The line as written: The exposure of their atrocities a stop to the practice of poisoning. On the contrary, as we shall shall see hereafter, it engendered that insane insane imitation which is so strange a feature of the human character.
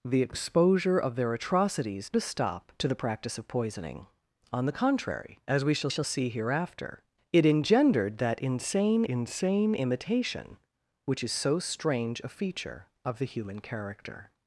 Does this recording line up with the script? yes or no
yes